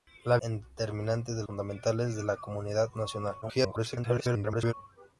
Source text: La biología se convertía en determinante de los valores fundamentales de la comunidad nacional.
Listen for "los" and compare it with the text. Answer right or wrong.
wrong